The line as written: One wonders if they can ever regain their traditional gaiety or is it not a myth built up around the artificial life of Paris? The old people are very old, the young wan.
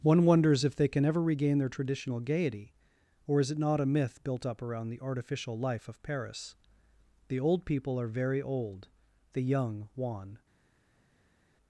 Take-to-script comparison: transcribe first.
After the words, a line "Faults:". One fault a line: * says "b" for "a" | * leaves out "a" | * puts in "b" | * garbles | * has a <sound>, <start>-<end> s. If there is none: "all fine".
One wonders if they can ever regain their traditional gaiety or is it not a myth built up around the artificial life of Paris? The old people are very old, the young wan.
Faults:
all fine